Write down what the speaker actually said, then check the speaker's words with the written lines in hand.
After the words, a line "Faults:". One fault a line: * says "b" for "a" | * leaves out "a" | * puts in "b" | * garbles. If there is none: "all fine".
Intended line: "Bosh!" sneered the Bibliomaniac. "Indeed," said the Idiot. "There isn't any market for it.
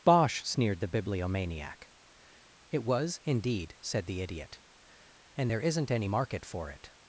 "Bosh!" sneered the Bibliomaniac. "It was, indeed," said the Idiot. "And there isn't any market for it.
Faults:
* puts in "It was"
* puts in "And"